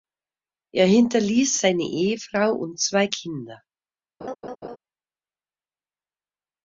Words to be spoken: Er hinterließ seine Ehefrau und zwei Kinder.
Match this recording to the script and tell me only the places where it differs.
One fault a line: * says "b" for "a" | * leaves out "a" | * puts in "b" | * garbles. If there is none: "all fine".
all fine